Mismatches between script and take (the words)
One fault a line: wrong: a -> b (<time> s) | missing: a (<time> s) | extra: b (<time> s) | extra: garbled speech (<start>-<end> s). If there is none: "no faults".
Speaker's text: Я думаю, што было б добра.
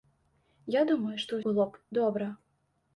no faults